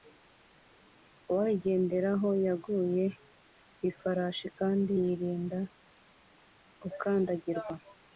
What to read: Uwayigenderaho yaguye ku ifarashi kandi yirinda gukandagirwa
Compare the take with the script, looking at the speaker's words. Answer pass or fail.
pass